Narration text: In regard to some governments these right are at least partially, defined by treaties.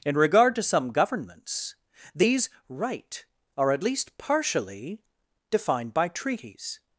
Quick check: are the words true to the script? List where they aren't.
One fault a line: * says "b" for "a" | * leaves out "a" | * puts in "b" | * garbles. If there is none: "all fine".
all fine